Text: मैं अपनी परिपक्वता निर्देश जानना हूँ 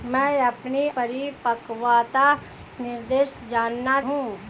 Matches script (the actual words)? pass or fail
pass